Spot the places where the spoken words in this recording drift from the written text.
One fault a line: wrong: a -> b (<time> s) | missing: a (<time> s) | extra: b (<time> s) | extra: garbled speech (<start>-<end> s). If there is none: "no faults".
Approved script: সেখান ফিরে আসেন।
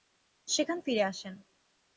no faults